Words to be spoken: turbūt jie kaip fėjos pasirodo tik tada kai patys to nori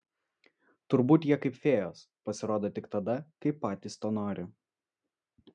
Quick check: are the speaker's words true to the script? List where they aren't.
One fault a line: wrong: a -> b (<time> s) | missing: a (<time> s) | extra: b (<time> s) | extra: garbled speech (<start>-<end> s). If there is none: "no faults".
no faults